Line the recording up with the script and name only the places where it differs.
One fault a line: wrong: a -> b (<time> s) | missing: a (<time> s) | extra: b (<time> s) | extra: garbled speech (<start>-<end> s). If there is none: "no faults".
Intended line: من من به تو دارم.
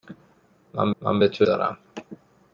no faults